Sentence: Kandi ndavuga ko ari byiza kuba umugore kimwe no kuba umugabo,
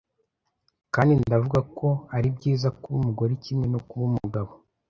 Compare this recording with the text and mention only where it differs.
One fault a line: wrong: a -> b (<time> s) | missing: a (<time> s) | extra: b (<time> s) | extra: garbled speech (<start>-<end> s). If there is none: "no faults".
no faults